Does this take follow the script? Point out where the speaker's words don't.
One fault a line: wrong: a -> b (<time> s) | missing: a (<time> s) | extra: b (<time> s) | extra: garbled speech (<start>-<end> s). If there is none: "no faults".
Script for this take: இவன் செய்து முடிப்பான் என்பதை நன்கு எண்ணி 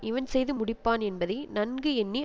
no faults